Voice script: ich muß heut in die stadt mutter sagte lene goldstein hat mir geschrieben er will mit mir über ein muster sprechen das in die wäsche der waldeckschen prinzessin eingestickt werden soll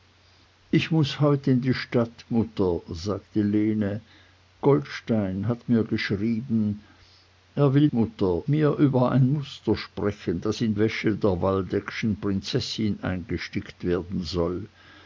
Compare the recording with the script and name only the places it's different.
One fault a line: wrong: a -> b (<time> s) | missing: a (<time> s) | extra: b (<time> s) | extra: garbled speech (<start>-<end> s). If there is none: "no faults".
wrong: mit -> mutter (7.9 s)
missing: die (10.7 s)